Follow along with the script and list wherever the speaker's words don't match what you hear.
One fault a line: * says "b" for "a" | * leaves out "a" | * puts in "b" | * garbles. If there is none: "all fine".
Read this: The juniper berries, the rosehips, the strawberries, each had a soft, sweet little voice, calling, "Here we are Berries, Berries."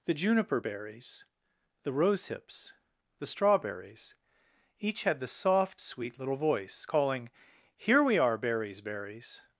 * says "the" for "a"